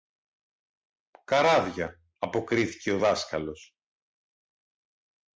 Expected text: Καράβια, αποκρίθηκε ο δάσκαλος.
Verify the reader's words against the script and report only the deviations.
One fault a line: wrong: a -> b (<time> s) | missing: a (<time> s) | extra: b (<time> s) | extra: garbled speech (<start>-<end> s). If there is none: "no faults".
no faults